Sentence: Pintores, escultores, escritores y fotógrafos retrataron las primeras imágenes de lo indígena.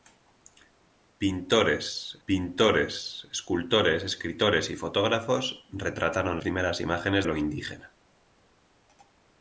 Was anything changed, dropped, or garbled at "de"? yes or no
yes